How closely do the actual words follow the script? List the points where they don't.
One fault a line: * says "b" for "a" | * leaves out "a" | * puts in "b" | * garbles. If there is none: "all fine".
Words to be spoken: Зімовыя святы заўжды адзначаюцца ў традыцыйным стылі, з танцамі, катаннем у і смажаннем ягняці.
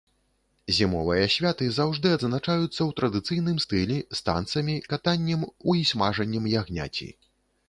all fine